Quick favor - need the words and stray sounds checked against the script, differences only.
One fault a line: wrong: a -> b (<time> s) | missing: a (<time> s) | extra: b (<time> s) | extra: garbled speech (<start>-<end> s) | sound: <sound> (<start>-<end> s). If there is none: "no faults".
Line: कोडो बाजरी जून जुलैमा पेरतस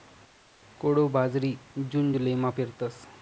no faults